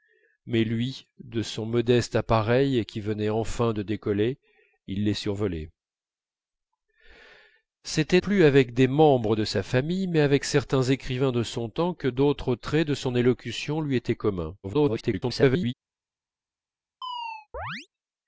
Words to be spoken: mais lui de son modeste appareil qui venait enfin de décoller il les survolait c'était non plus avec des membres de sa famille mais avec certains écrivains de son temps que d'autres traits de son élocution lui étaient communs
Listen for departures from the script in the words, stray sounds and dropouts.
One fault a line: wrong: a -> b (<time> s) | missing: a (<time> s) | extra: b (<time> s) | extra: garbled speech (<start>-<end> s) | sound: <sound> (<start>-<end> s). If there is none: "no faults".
missing: non (8.2 s)
extra: garbled speech (14.6-15.7 s)
sound: chirp (17.0-17.9 s)